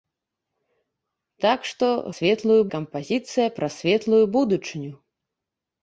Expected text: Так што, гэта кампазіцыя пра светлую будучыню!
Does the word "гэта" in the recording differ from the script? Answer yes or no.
yes